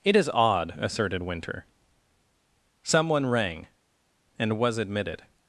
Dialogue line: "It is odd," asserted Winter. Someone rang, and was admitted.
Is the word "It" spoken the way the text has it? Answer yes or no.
yes